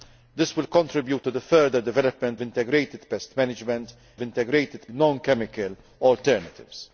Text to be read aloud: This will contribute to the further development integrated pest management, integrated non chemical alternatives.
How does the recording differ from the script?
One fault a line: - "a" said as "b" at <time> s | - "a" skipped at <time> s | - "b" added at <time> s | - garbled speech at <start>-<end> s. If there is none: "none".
none